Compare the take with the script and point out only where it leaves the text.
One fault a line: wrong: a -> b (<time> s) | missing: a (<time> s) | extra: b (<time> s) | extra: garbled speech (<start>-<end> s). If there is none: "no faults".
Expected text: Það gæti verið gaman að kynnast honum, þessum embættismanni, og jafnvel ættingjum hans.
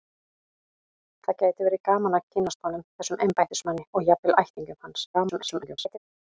extra: garbled speech (5.1-6.0 s)